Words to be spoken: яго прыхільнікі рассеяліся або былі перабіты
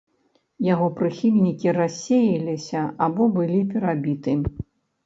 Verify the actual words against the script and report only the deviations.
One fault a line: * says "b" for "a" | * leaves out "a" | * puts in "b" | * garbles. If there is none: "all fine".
all fine